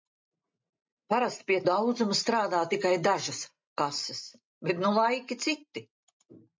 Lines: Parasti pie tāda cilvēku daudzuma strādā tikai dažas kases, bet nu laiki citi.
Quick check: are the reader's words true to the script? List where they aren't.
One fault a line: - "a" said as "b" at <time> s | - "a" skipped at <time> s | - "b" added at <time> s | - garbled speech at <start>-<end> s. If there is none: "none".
- "tāda cilvēku" skipped at 1.6 s